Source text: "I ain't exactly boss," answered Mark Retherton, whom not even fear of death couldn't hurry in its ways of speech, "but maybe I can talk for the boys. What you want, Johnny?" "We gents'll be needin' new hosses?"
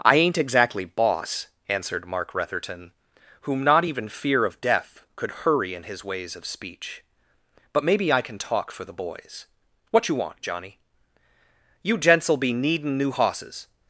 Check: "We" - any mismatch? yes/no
yes